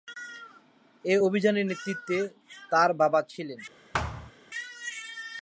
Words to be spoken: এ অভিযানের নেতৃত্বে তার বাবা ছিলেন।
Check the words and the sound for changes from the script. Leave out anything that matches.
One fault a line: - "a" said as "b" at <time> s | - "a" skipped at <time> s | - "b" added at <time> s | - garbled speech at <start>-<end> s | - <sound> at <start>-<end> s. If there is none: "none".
- thud at 3.9-4.3 s